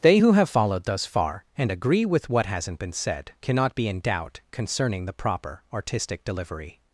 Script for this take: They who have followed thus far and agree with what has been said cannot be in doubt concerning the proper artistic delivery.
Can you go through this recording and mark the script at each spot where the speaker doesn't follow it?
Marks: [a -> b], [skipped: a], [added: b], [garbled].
They who have followed thus far and agree with what [has -> hasn't] been said cannot be in doubt concerning the proper artistic delivery.